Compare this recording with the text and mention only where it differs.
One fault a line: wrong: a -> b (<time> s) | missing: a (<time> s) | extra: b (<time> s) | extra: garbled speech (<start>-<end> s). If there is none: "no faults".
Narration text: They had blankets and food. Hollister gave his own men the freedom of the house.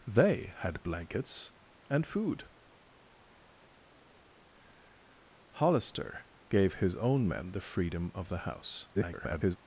extra: garbled speech (8.9-9.6 s)